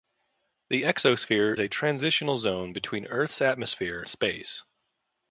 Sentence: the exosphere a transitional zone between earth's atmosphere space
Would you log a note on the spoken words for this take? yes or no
no